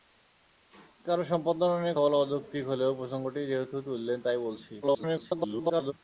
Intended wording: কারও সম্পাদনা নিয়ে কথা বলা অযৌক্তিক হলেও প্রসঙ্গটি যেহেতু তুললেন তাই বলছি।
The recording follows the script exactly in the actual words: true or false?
false